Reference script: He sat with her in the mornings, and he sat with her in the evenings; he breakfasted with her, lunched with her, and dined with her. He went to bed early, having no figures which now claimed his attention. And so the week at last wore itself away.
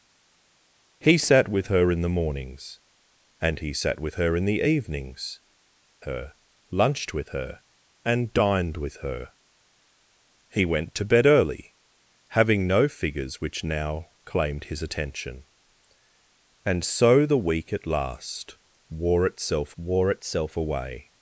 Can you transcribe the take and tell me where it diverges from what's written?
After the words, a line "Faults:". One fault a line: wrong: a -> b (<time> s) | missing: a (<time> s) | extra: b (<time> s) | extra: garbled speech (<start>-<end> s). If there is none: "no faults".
He sat with her in the mornings, and he sat with her in the evenings; her, lunched with her, and dined with her. He went to bed early, having no figures which now claimed his attention. And so the week at last wore itself wore itself away.
Faults:
missing: he breakfasted with (5.4 s)
extra: wore itself (19.8 s)